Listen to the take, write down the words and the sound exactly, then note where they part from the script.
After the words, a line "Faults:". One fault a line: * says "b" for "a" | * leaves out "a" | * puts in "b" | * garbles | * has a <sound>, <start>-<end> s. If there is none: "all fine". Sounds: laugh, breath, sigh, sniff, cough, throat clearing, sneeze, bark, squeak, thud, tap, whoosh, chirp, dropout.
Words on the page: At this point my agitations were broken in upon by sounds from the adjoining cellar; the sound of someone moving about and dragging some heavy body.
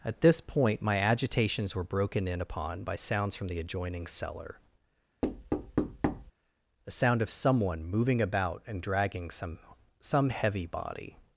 At this point my agitations were broken in upon by sounds from the adjoining cellar; the sound of someone moving about and dragging some some heavy body.
Faults:
* has a thud, 5.2-6.3 s
* puts in "some"